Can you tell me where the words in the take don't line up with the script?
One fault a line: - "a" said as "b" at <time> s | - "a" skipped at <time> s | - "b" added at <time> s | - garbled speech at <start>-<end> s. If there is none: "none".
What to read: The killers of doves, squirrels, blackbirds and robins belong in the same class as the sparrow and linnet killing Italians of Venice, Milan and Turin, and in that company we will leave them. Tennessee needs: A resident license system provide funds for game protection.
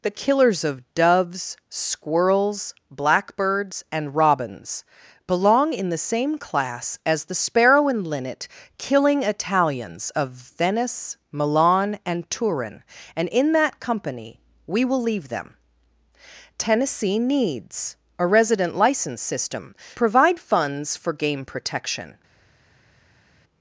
none